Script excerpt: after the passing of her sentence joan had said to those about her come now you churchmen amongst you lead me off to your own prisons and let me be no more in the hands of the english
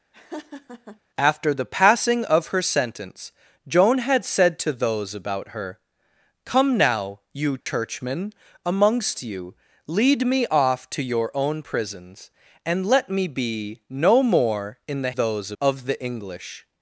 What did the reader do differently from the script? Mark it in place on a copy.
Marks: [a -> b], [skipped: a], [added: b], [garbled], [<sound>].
[laugh] after the passing of her sentence joan had said to those about her come now you churchmen [dropout] amongst you lead me off to your own prisons and let me be no more in the [hands -> those] of the english